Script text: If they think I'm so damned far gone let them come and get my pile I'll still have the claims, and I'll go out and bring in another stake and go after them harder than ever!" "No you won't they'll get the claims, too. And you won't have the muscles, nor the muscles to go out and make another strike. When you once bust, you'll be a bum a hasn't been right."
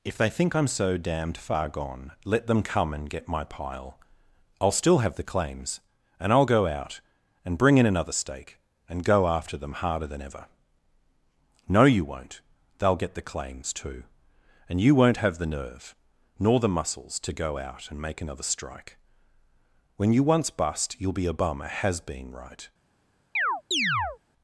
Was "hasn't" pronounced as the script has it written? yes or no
no